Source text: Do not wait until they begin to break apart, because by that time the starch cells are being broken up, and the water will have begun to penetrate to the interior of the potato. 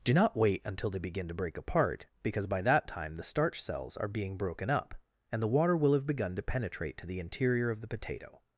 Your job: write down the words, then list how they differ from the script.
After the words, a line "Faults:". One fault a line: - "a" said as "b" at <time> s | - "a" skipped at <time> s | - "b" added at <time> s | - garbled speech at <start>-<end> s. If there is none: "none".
Do not wait until they begin to break apart, because by that time the starch cells are being broken up, and the water will have begun to penetrate to the interior of the potato.
Faults:
none